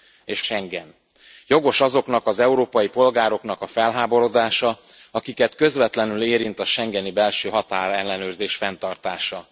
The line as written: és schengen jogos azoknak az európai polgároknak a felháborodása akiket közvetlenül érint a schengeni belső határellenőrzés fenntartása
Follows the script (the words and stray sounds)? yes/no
yes